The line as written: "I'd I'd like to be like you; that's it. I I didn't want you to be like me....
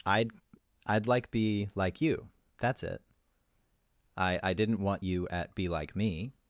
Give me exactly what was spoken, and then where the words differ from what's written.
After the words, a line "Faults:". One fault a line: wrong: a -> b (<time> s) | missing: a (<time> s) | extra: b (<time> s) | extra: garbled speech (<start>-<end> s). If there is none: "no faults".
"I'd I'd like be like you; that's it. I I didn't want you at be like me....
Faults:
missing: to (1.3 s)
wrong: to -> at (5.3 s)